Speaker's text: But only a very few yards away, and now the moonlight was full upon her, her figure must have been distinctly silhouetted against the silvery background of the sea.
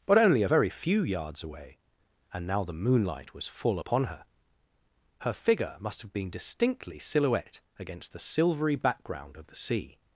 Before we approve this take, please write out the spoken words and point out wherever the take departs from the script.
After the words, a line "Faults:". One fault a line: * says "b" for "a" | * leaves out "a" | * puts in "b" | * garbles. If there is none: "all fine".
But only a very few yards away, and now the moonlight was full upon her, her figure must have been distinctly silhouette against the silvery background of the sea.
Faults:
* says "silhouette" for "silhouetted"